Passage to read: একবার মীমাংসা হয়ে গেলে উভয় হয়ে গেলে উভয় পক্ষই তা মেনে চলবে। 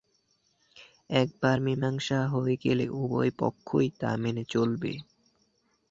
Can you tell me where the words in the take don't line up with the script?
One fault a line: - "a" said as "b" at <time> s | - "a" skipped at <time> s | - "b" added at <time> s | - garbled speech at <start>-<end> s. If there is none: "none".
- "হয়ে গেলে উভয়" skipped at 3.3 s